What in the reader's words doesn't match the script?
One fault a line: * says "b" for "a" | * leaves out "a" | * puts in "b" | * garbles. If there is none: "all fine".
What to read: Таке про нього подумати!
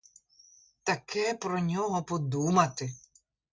all fine